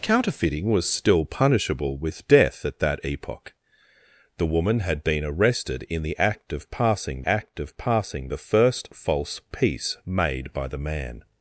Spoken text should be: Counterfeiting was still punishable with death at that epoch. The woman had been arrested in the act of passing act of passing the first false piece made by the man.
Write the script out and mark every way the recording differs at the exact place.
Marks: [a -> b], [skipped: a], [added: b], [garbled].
Counterfeiting was still punishable with death at that epoch. The woman had been arrested in the act of passing act of passing the first false piece made by the man.